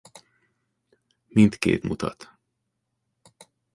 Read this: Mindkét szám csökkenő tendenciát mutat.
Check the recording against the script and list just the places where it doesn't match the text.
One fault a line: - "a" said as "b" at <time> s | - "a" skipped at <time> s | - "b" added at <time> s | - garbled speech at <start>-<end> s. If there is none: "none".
- "szám csökkenő tendenciát" skipped at 1.8 s